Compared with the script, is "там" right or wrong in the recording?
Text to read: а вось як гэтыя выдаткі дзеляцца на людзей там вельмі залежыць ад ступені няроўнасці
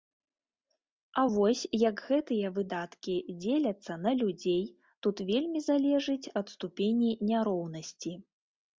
wrong